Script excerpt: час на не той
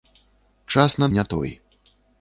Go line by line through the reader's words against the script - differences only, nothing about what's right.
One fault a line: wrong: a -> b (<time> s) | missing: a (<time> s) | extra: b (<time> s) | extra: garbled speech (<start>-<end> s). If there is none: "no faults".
no faults